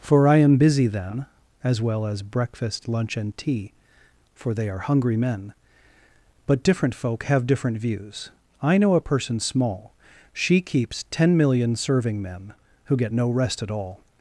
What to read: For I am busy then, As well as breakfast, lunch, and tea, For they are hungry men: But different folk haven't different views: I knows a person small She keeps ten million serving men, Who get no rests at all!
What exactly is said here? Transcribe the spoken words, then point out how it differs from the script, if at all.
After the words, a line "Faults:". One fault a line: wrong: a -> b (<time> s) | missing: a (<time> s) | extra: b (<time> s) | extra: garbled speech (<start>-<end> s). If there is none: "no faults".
For I am busy then, As well as breakfast, lunch, and tea, For they are hungry men: But different folk have different views: I know a person small She keeps ten million serving men, Who get no rest at all!
Faults:
wrong: haven't -> have (7.2 s)
wrong: knows -> know (8.8 s)
wrong: rests -> rest (13.3 s)